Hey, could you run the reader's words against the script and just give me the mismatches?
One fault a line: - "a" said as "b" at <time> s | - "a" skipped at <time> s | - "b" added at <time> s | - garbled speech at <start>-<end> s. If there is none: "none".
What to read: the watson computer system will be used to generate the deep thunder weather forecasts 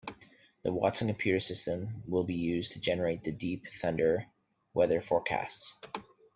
none